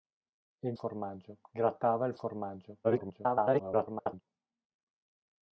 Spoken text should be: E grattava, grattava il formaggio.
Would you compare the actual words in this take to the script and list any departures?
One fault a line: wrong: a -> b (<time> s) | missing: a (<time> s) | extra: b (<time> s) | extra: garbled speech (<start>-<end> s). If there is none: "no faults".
wrong: grattava -> formaggio (0.7 s)
extra: garbled speech (2.8-4.2 s)